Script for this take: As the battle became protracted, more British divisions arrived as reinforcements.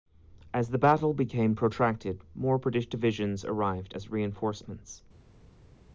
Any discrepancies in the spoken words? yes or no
no